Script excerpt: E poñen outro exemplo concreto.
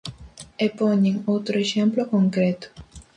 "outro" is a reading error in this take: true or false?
false